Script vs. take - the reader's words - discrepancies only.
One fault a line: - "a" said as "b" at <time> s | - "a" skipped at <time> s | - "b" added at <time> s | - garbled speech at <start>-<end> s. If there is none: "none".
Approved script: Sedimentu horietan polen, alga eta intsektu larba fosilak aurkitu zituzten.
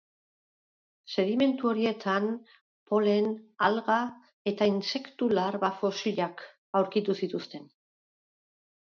none